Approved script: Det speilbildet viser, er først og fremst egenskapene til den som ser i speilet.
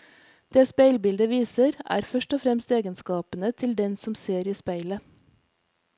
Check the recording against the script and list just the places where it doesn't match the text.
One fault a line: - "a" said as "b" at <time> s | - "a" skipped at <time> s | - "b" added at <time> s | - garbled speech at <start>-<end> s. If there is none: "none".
none